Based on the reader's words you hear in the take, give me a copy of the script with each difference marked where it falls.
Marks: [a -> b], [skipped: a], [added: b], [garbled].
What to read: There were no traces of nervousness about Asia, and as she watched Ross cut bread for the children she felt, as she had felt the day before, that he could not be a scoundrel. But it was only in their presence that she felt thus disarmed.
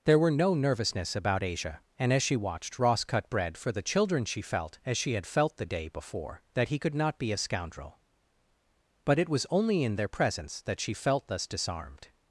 There were no [skipped: traces of] nervousness about Asia, and as she watched Ross cut bread for the children she felt, as she had felt the day before, that he could not be a scoundrel. But it was only in their presence that she felt thus disarmed.